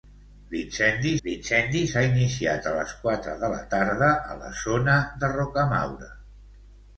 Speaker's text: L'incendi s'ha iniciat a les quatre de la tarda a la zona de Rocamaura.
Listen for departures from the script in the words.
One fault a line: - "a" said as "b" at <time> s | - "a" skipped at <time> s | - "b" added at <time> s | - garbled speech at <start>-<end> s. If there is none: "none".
- "l'incendi" added at 1.2 s